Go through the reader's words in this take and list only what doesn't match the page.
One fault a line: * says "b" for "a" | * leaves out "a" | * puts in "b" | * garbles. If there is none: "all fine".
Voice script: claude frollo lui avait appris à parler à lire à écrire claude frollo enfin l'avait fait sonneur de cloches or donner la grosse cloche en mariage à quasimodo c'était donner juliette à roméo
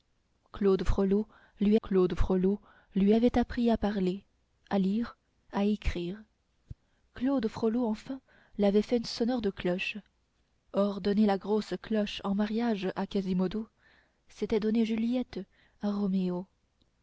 * puts in "claude frollo lui"